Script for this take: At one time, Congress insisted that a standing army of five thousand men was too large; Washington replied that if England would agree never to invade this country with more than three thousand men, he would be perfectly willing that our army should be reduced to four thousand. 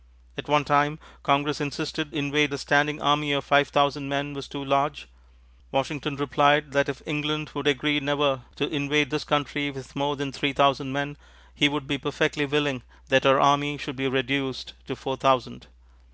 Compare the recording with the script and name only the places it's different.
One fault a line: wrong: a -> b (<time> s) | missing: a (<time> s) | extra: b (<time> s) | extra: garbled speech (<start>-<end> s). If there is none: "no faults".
wrong: that -> invade (2.1 s)